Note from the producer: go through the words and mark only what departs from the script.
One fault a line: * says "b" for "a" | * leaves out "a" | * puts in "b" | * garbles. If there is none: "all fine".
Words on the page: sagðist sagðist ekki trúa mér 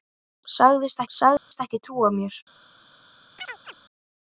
all fine